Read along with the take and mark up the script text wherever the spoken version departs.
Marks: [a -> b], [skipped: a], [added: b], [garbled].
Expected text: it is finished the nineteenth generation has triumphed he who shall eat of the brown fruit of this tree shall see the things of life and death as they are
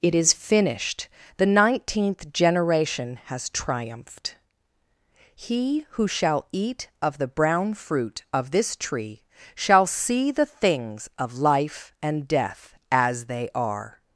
it is finished the nineteenth generation has triumphed he who shall eat of the brown fruit of this tree shall see the things of life and death as they are